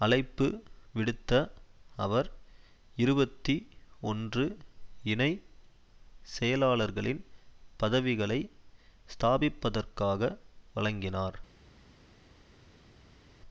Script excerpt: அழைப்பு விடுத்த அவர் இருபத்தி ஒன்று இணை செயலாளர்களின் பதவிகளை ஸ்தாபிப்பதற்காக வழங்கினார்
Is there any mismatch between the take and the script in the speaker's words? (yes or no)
no